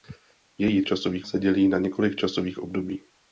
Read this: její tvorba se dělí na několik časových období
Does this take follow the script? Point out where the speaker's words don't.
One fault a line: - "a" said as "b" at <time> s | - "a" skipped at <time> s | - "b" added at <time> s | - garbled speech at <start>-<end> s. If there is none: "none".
- "tvorba" said as "časových" at 0.8 s